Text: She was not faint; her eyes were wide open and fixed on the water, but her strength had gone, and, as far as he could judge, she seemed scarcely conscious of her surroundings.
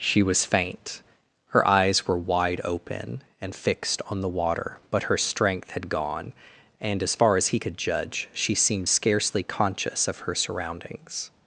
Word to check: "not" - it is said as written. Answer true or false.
false